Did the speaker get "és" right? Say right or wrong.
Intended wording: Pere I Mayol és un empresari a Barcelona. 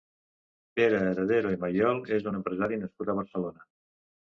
right